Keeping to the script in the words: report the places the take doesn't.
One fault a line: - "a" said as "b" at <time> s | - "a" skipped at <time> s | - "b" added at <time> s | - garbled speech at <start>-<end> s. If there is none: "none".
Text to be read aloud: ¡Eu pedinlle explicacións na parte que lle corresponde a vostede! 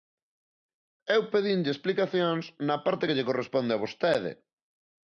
none